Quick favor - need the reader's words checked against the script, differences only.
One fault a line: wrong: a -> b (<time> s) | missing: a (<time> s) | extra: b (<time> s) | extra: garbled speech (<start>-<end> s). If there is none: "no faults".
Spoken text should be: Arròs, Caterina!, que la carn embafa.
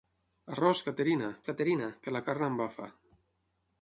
extra: Caterina (1.5 s)